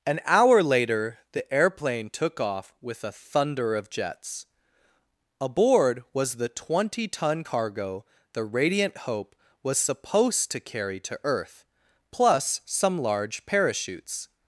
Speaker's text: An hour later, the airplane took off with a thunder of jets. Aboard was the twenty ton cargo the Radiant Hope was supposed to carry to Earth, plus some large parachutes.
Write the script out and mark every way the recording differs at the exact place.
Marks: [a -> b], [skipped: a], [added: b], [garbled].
An hour later, the airplane took off with a thunder of jets. Aboard was the twenty ton cargo the Radiant Hope was supposed to carry to Earth, plus some large parachutes.